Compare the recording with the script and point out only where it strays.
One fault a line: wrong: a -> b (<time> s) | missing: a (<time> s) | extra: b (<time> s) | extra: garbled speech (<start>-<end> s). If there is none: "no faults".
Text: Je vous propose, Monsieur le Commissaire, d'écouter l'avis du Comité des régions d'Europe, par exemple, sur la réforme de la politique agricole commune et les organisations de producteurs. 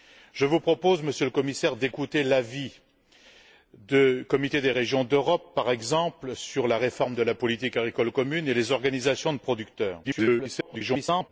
extra: garbled speech (10.0-11.3 s)